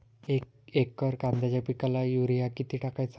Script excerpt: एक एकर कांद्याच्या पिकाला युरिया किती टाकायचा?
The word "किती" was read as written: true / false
true